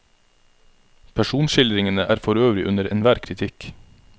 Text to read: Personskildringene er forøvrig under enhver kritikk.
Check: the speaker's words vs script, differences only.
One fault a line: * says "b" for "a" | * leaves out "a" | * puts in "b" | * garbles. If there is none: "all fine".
all fine